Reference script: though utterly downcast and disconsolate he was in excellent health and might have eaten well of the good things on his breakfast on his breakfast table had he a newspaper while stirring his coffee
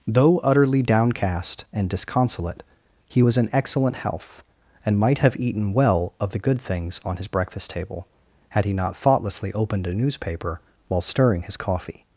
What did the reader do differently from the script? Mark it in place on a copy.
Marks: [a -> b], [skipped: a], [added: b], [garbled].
though utterly downcast and disconsolate he was in excellent health and might have eaten well of the good things on his breakfast [on his breakfast table had he -> table had he not thoughtlessly opened] a newspaper while stirring his coffee